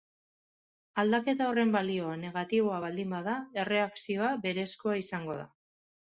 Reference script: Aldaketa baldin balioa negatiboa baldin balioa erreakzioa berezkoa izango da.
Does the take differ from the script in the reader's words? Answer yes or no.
yes